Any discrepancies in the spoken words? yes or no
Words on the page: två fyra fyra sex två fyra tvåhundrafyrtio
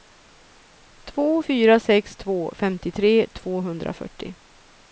yes